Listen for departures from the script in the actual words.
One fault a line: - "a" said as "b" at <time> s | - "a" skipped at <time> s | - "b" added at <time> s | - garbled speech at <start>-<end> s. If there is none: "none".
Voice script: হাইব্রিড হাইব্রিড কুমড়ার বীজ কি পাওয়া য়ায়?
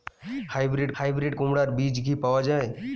none